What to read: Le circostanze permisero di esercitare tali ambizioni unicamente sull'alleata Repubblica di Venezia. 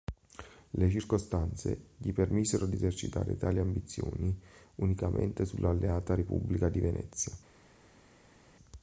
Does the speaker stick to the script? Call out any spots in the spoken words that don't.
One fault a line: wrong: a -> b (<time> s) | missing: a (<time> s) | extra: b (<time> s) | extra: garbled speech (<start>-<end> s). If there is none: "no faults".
extra: gli (2.0 s)